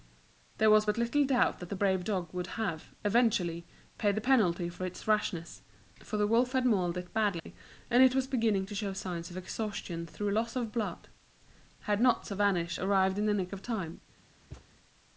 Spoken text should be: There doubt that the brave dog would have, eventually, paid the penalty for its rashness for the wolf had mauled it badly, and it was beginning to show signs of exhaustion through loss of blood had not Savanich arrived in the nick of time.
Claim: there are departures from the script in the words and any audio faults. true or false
true